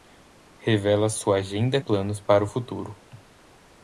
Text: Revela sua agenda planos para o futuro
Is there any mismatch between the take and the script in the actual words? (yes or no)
no